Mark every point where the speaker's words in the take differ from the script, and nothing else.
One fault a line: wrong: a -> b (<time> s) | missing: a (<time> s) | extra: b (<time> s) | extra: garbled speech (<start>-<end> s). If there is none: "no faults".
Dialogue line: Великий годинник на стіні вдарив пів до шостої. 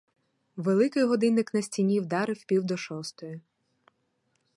no faults